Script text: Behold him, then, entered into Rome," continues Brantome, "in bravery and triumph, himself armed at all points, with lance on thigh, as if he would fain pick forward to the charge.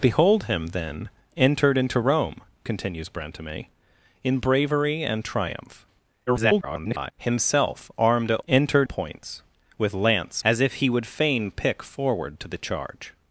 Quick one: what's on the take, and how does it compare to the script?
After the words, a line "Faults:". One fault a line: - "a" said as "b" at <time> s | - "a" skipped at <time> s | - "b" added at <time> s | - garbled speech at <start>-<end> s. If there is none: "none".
Behold him, then, entered into Rome," continues Brantome, "in bravery and triumph, [garbled] himself armed at entered points, with lance as if he would fain pick forward to the charge.
Faults:
- garbled speech at 6.3-7.1 s
- "all" said as "entered" at 8.5 s
- "on thigh" skipped at 10.4 s